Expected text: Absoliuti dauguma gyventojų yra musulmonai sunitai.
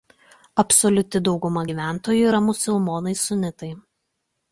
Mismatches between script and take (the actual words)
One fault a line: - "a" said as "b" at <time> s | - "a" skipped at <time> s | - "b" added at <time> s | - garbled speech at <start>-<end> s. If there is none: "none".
none